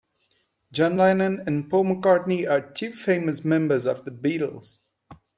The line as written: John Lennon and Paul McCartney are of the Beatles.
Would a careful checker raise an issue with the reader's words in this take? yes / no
yes